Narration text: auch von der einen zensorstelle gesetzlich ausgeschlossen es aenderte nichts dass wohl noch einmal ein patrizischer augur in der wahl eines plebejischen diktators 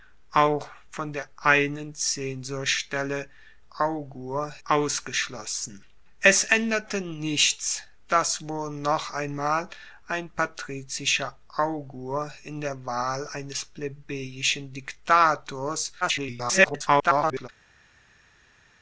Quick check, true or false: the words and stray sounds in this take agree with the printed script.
false